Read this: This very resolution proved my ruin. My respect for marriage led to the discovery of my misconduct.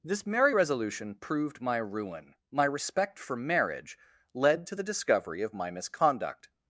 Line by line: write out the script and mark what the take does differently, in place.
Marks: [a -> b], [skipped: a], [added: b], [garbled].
This [very -> merry] resolution proved my ruin. My respect for marriage led to the discovery of my misconduct.